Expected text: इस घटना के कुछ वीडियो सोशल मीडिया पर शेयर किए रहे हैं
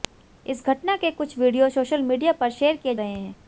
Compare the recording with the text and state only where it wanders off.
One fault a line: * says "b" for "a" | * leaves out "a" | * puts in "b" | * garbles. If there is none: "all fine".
all fine